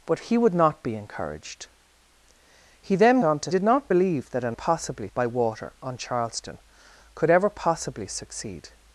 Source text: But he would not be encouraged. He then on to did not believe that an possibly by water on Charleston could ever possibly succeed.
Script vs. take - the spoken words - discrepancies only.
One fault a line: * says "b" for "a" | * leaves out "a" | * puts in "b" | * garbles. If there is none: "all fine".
all fine